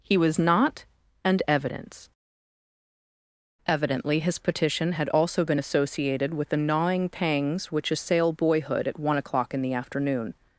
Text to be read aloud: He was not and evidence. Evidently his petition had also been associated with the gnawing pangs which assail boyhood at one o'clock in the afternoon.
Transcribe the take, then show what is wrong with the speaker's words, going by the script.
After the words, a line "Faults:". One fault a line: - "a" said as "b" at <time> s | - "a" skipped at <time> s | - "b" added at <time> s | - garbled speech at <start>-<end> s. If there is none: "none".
He was not and evidence. Evidently his petition had also been associated with the gnawing pangs which assail boyhood at one o'clock in the afternoon.
Faults:
none